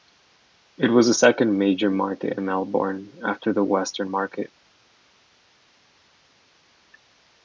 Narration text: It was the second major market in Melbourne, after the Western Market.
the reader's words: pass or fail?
pass